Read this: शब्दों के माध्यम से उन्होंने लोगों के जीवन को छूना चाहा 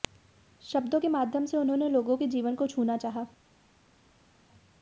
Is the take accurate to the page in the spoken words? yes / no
yes